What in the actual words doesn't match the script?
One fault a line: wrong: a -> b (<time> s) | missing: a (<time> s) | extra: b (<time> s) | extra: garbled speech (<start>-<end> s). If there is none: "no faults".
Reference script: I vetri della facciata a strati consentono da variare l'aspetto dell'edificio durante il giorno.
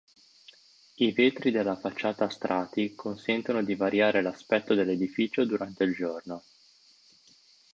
wrong: da -> di (3.6 s)